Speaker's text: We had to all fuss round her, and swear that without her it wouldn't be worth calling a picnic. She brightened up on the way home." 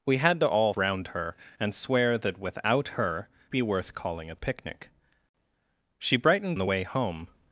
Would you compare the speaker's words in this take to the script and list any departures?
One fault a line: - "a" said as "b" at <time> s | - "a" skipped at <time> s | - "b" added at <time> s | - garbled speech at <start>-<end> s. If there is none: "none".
- "fuss" skipped at 0.7 s
- "it wouldn't" skipped at 3.3 s
- "up on" skipped at 6.6 s